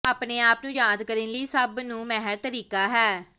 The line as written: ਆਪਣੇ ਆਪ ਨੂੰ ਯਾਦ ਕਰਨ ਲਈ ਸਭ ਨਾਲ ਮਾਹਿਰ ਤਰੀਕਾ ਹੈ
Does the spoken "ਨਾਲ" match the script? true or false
false